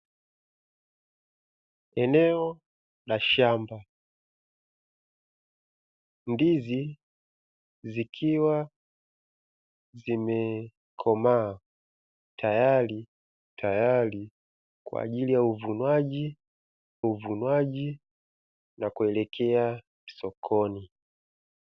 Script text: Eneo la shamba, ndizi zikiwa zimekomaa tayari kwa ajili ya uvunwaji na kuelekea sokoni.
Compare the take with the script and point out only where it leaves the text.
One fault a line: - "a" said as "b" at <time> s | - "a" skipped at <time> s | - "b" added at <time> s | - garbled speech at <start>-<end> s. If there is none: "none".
- "tayari" added at 13.6 s
- "uvunwaji" added at 17.0 s